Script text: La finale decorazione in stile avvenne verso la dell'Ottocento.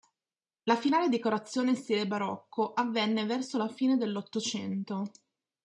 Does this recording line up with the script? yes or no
no